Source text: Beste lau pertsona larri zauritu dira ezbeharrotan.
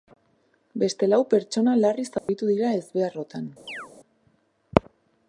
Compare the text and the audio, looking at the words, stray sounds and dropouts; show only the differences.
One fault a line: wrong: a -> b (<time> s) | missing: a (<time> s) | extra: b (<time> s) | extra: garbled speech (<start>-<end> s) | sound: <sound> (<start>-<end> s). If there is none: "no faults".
sound: dropout (2.2-2.3 s)
sound: chirp (3.7-3.9 s)